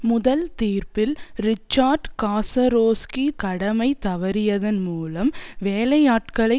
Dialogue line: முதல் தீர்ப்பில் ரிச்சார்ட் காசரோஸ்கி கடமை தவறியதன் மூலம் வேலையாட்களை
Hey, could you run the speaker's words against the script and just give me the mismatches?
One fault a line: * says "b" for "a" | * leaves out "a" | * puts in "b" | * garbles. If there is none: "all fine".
all fine